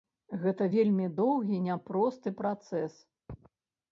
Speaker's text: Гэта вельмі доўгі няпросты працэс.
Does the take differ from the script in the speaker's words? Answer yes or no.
no